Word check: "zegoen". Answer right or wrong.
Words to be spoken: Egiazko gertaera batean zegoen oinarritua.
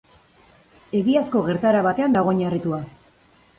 wrong